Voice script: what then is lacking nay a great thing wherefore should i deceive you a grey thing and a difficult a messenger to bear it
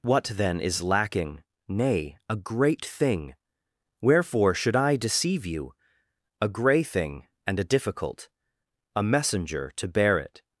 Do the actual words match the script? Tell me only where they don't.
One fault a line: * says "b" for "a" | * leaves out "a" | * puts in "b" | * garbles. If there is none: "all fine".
all fine